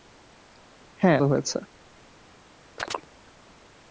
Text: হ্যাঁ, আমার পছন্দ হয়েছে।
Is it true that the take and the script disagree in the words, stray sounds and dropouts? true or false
true